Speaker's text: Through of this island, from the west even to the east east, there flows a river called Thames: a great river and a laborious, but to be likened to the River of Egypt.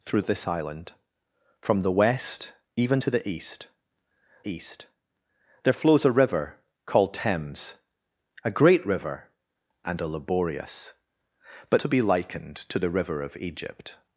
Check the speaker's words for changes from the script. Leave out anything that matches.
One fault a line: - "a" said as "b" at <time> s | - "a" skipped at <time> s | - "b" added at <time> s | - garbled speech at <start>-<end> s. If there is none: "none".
none